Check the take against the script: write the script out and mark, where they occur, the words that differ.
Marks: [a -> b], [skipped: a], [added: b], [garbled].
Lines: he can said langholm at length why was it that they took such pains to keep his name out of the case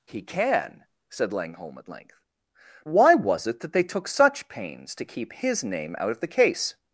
he can said langholm at length why was it that they took such pains to keep his name out of the case